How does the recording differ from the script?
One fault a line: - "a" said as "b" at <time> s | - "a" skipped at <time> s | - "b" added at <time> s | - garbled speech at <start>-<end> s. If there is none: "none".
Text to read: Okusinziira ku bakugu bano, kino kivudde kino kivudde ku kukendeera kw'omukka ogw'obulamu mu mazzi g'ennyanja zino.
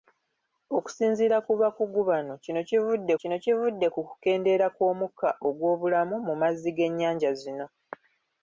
none